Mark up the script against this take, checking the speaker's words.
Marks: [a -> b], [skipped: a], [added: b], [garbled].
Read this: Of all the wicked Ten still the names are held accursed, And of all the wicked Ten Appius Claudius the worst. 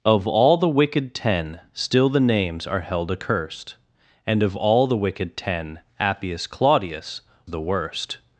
Of all the wicked Ten still the names are held accursed, And of all the wicked Ten Appius Claudius the worst.